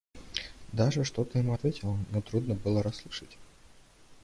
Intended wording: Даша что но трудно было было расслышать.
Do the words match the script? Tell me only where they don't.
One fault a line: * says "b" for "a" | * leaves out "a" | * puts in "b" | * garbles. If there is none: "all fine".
* puts in "то ему ответила"
* leaves out "было"